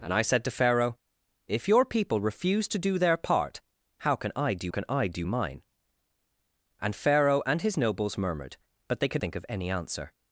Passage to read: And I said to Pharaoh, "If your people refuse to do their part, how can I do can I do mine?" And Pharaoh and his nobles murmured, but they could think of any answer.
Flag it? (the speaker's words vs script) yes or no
no